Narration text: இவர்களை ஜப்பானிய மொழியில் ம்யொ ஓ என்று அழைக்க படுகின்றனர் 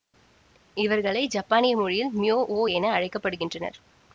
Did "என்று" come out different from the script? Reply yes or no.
yes